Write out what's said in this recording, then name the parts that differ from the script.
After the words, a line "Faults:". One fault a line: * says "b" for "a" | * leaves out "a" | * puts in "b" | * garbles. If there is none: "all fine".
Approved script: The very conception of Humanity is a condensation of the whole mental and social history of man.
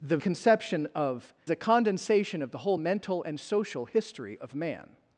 The conception of A condensation of the whole mental and social history of man.
Faults:
* leaves out "very"
* leaves out "Humanity is"